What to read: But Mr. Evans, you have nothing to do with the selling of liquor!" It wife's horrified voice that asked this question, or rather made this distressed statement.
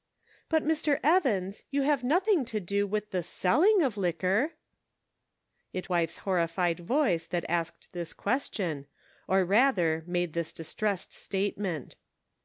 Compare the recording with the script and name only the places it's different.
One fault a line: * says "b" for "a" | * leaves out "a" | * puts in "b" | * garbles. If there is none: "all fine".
all fine